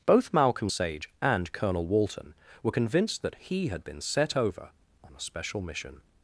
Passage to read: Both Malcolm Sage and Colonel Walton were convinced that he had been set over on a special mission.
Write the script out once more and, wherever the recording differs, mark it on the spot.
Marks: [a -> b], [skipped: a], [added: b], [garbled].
Both Malcolm Sage and Colonel Walton were convinced that he had been set over on a special mission.